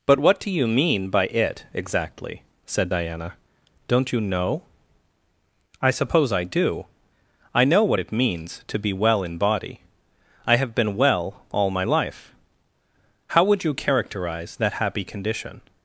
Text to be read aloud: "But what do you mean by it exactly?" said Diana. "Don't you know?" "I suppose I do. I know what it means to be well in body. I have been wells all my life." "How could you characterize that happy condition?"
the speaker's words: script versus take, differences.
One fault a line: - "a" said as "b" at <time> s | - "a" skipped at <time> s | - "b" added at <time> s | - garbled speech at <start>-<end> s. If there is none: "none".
- "wells" said as "well" at 11.0 s
- "could" said as "would" at 13.4 s